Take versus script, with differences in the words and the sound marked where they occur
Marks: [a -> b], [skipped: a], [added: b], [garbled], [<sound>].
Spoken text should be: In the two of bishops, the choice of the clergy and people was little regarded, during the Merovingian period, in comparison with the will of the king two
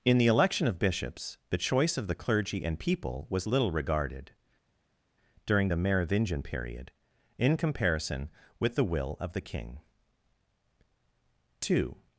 In the [two -> election] of bishops, the choice of the clergy and people was little regarded, during the Merovingian period, in comparison with the will of the king two